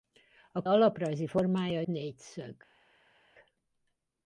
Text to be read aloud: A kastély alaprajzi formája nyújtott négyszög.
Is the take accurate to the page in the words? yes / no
no